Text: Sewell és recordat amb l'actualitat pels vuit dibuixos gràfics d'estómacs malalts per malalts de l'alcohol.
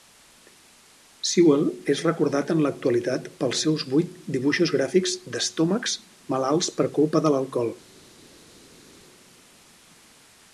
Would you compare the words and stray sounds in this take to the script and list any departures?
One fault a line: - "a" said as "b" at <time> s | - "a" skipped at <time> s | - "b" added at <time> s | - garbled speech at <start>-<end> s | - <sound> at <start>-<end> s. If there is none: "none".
- "amb" said as "en" at 2.5 s
- "seus" added at 3.6 s
- "malalts" said as "culpa" at 7.0 s